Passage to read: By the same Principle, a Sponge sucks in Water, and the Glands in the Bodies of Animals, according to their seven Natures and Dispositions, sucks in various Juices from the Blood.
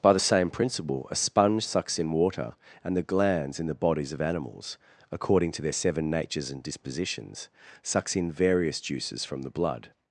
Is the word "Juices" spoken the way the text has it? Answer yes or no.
yes